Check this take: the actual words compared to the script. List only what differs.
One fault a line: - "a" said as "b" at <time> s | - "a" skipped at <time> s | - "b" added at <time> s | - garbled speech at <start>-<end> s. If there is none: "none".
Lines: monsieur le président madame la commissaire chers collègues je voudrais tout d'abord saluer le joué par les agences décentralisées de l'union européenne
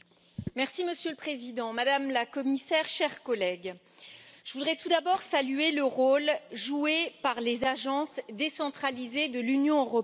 - "rôle" added at 5.8 s